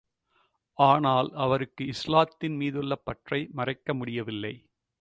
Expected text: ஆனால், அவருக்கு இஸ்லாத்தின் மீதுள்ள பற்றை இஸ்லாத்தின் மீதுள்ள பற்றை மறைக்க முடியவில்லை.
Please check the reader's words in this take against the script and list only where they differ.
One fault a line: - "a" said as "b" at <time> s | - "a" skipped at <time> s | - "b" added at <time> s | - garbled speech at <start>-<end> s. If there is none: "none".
- "இஸ்லாத்தின் மீதுள்ள பற்றை" skipped at 3.5 s